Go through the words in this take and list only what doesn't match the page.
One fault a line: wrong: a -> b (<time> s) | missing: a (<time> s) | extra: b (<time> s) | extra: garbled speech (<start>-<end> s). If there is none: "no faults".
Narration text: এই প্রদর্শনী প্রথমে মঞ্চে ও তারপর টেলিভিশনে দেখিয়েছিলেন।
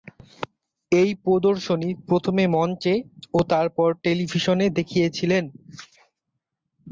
no faults